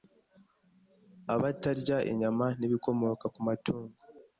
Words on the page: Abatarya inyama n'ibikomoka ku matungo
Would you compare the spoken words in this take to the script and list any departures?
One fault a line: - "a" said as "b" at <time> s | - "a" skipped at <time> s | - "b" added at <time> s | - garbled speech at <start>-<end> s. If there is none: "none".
none